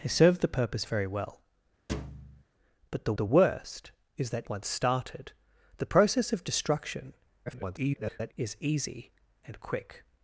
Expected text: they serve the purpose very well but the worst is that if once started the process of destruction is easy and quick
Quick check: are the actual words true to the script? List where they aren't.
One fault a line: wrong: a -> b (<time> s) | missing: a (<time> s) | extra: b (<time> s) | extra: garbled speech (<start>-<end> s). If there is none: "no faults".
extra: the (3.2 s)
missing: if (4.5 s)
extra: garbled speech (7.5-8.3 s)